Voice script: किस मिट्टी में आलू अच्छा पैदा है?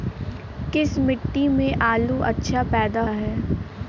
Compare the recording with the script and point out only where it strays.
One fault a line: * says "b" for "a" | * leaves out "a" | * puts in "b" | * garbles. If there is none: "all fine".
all fine